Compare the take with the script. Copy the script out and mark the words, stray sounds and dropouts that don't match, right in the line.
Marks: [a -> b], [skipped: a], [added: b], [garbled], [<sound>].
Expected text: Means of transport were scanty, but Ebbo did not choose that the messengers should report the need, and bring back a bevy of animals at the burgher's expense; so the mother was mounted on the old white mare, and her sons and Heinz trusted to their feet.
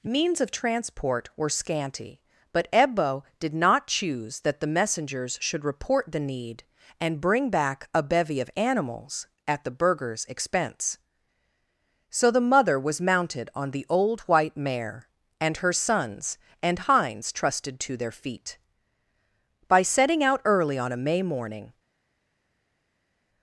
Means of transport were scanty, but Ebbo did not choose that the messengers should report the need, and bring back a bevy of animals at the burgher's expense; so the mother was mounted on the old white mare, and her sons and Heinz trusted to their feet. [added: By setting out early on a May morning]